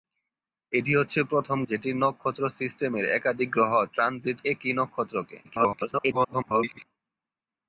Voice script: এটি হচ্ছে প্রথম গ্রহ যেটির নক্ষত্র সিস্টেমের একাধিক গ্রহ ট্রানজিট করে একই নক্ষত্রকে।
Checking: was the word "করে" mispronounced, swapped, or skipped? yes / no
yes